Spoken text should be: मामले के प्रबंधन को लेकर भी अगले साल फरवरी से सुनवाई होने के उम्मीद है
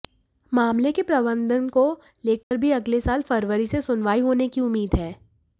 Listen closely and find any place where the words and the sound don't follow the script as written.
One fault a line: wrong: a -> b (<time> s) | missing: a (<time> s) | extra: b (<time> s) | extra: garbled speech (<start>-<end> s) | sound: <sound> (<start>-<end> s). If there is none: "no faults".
sound: dropout (2.4-2.5 s)
wrong: के -> की (4.5 s)